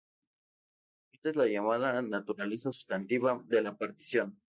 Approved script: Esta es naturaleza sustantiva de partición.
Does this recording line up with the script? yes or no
no